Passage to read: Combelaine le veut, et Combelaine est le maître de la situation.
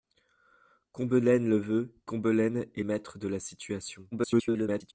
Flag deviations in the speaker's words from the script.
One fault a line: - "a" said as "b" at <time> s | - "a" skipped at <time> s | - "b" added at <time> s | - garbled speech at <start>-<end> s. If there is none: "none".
- "et" skipped at 1.9 s
- "le" skipped at 2.8 s
- garbled speech at 4.1-4.9 s